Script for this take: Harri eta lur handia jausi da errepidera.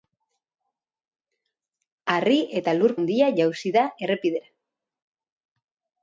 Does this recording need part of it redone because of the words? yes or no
no